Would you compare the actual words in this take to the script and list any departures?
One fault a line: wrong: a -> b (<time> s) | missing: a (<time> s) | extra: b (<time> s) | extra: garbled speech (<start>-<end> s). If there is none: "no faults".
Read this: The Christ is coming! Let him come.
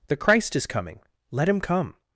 no faults